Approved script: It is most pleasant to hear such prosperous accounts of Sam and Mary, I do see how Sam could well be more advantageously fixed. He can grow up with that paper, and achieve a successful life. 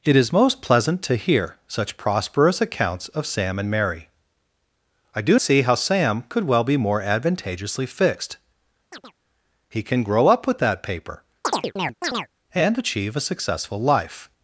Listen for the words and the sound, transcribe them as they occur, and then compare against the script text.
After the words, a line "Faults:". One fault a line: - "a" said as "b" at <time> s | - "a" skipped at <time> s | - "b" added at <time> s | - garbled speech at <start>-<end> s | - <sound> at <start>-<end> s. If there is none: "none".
It is most pleasant to hear such prosperous accounts of Sam and Mary, I do see how Sam could well be more advantageously fixed. He can grow up with that paper, and achieve a successful life.
Faults:
- chirp at 8.9-9.1 s
- chirp at 11.4-12.3 s